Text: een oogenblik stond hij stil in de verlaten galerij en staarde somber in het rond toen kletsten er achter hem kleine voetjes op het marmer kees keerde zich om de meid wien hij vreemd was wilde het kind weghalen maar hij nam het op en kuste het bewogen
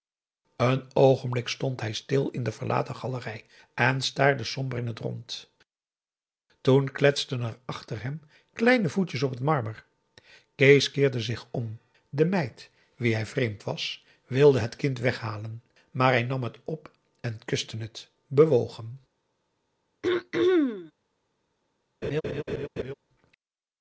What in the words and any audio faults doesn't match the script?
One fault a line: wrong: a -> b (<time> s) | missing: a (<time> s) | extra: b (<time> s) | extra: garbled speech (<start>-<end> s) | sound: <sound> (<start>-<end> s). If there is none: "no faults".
sound: throat clearing (20.0-20.9 s)
sound: laugh (22.0-22.9 s)